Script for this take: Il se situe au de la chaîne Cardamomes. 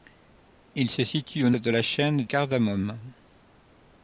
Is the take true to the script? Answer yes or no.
yes